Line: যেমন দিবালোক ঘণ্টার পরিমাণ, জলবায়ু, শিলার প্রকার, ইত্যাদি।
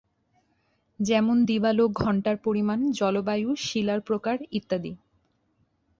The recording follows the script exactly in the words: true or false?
true